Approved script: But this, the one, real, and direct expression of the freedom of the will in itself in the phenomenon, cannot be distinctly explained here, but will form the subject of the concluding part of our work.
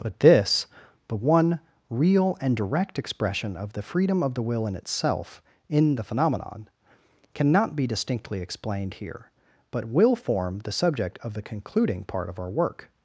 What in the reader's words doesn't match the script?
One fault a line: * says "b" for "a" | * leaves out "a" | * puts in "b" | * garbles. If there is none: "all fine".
all fine